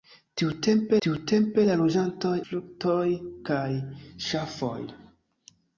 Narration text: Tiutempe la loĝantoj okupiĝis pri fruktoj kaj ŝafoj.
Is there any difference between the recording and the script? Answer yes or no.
yes